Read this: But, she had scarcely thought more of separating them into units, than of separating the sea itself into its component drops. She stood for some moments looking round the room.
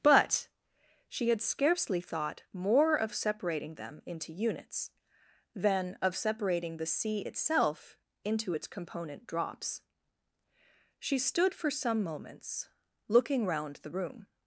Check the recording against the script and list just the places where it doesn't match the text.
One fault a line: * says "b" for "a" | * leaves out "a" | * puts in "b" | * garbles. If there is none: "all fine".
all fine